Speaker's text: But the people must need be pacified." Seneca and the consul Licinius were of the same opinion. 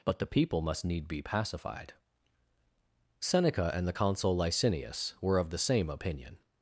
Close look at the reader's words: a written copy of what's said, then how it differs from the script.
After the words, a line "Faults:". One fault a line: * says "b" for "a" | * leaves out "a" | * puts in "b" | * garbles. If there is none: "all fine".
But the people must need be pacified." Seneca and the consul Licinius were of the same opinion.
Faults:
all fine